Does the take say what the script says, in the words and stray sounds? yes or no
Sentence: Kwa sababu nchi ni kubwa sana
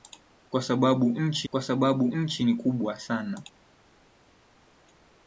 no